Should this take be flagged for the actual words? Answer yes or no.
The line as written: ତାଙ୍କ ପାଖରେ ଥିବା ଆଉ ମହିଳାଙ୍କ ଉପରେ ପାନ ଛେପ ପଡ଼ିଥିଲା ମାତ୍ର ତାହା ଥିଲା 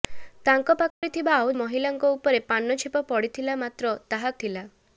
no